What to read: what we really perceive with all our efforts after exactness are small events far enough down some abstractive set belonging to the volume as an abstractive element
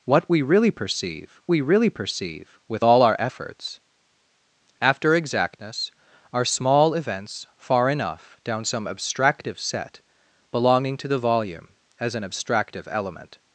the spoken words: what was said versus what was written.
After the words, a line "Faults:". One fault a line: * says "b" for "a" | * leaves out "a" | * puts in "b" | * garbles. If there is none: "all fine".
what we really perceive we really perceive with all our efforts after exactness are small events far enough down some abstractive set belonging to the volume as an abstractive element
Faults:
* puts in "we really perceive"